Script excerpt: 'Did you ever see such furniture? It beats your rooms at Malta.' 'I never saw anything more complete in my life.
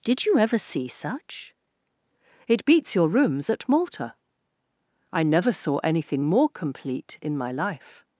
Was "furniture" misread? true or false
true